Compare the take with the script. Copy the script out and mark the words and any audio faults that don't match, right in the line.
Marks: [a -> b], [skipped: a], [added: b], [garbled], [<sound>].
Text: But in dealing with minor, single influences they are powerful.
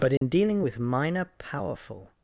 But in [dropout] dealing with minor, [skipped: single influences they are] powerful.